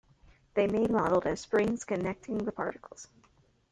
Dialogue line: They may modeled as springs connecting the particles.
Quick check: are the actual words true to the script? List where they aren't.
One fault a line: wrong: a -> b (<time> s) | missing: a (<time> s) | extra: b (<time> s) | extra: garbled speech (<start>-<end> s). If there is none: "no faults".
no faults